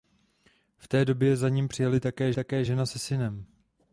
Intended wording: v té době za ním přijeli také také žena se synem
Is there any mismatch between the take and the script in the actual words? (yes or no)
no